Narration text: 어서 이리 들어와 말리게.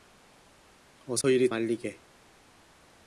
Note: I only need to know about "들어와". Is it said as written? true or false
false